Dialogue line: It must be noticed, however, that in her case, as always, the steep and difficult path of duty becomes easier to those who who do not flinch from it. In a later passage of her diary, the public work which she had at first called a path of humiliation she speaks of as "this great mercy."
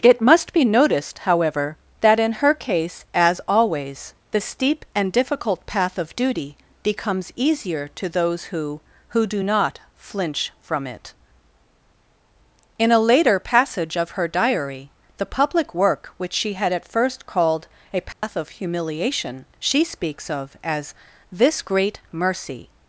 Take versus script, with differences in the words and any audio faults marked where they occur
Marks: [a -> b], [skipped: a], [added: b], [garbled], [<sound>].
It must be noticed, however, that in her case, as always, the steep and difficult path of duty becomes easier to those who who do not flinch from it. In a later passage of her diary, the public work which she had at first called a path [dropout] of humiliation she speaks of as "this great mercy."